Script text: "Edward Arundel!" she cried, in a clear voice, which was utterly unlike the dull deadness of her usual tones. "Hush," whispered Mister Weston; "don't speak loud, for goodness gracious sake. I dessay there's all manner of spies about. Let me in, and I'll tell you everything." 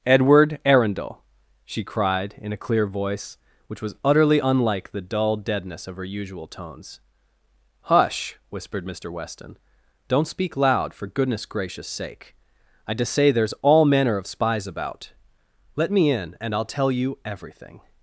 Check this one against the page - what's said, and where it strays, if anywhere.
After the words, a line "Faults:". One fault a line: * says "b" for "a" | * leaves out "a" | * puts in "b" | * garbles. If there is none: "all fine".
"Edward Arundel!" she cried, in a clear voice, which was utterly unlike the dull deadness of her usual tones. "Hush," whispered Mister Weston; "don't speak loud, for goodness gracious sake. I dessay there's all manner of spies about. Let me in, and I'll tell you everything."
Faults:
all fine